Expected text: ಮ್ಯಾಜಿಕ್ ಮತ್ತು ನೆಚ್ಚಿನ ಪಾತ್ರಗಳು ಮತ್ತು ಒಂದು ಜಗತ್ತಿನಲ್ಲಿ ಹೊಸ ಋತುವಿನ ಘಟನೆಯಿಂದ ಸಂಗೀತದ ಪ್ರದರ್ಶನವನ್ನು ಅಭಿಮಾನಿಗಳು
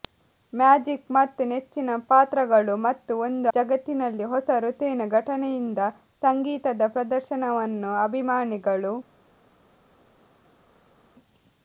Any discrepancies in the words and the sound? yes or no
no